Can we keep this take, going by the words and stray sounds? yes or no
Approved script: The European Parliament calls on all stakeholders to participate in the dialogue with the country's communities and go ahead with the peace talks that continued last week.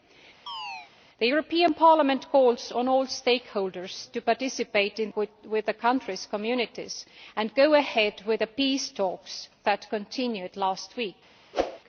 no